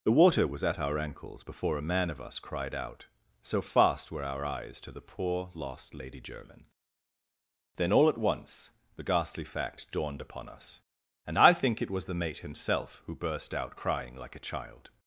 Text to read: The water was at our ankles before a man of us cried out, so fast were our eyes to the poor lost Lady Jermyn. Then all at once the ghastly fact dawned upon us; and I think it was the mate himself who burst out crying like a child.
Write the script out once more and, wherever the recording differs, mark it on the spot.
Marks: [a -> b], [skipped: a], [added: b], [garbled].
The water was at our ankles before a man of us cried out, so fast were our eyes to the poor lost Lady Jermyn. Then all at once the ghastly fact dawned upon us; and I think it was the mate himself who burst out crying like a child.